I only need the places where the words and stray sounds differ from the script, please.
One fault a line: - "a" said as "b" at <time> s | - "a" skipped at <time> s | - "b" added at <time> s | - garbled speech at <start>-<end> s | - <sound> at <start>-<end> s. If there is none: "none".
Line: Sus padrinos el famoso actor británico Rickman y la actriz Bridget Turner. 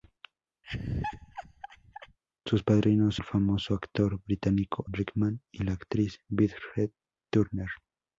- laugh at 0.6-2.2 s